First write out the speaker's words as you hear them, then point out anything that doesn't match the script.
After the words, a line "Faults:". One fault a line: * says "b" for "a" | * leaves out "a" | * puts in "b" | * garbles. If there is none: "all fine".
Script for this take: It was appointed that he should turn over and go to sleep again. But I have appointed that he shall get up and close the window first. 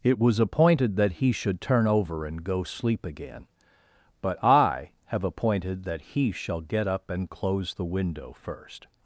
It was appointed that he should turn over and go sleep again. But I have appointed that he shall get up and close the window first.
Faults:
* leaves out "to"